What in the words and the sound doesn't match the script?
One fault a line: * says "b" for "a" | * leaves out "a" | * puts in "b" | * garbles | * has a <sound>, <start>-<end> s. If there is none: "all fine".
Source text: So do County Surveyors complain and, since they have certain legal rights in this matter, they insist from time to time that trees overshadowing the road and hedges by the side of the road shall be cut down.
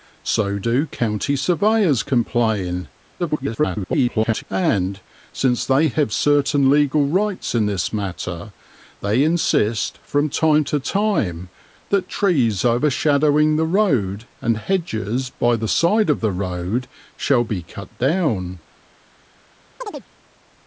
* garbles
* has a chirp, 19.8-20.1 s